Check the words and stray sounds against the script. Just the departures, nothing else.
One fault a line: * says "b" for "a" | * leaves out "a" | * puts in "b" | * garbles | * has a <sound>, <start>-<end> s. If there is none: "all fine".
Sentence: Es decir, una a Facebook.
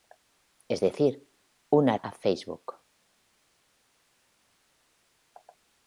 all fine